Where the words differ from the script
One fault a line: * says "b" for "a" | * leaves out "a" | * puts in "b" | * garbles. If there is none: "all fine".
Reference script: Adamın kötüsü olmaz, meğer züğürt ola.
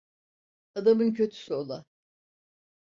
* leaves out "olmaz meğer züğürt"